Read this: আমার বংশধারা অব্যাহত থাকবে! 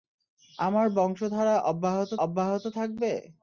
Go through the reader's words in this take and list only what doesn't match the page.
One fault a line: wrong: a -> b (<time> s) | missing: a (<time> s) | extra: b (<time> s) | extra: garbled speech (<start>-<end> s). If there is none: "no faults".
extra: অব্যাহত (2.2 s)